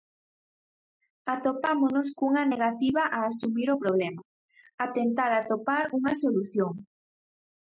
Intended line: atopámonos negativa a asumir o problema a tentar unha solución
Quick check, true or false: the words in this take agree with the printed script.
false